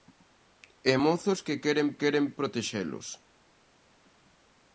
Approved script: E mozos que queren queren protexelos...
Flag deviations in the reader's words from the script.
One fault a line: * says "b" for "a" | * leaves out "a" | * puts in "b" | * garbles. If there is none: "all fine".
all fine